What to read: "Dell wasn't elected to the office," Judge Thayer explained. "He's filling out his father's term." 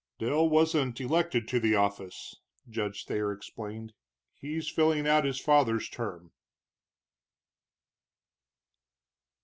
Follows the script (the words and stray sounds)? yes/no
yes